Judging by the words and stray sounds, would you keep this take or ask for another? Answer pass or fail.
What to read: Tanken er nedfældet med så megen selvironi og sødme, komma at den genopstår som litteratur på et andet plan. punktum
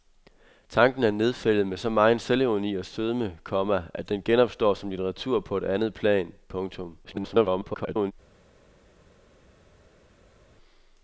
fail